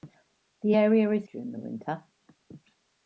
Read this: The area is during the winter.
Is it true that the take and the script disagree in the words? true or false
false